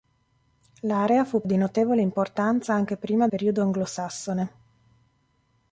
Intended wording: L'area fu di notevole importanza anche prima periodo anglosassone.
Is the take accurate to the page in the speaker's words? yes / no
yes